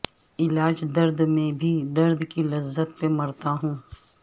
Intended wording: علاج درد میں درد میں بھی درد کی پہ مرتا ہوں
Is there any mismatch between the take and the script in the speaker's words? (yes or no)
yes